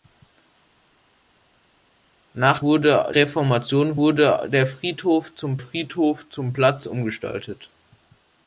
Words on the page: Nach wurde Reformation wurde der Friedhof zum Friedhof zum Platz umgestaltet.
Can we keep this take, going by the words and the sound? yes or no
yes